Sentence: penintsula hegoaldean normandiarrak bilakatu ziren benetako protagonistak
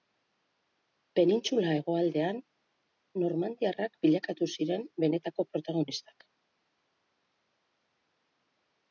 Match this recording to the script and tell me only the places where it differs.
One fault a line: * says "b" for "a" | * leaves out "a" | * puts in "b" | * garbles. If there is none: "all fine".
all fine